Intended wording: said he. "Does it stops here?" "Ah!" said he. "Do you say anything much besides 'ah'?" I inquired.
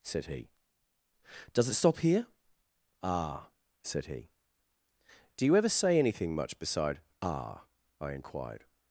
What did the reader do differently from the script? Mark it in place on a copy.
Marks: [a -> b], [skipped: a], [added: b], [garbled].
said he. "Does it [stops -> stop] here?" "Ah!" said he. "Do you [added: ever] say anything much [besides -> beside] 'ah'?" I inquired.